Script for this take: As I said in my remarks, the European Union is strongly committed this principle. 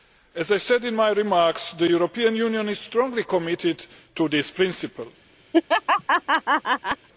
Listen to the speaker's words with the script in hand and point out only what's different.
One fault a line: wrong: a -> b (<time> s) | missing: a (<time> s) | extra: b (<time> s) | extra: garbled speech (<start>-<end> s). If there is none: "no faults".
extra: to (4.2 s)